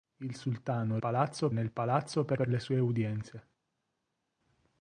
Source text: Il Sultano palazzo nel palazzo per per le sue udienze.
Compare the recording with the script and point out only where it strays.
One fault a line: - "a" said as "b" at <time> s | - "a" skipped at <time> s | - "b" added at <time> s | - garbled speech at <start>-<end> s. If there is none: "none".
none